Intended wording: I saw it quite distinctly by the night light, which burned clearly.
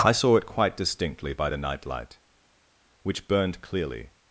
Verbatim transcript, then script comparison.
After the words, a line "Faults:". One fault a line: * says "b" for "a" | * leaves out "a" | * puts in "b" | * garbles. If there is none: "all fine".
I saw it quite distinctly by the night light, which burned clearly.
Faults:
all fine